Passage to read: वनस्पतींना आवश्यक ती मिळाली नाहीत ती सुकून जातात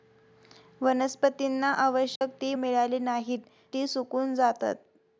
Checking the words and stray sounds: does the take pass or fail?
fail